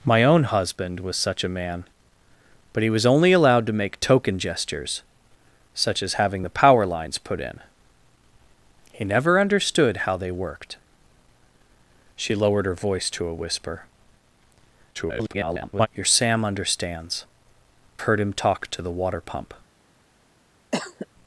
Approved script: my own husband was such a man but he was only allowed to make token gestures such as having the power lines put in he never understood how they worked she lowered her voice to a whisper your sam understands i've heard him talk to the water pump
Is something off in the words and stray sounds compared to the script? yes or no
yes